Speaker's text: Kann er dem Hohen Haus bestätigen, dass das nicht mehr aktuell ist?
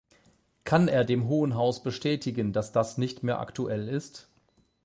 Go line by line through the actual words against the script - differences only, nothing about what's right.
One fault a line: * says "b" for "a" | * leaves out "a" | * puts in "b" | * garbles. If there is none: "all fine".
all fine